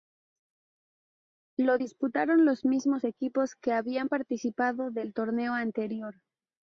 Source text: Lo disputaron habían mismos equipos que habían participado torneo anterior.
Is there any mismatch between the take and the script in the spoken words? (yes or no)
yes